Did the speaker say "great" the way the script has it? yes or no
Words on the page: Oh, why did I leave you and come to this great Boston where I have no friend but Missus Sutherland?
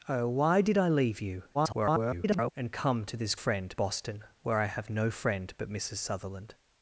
no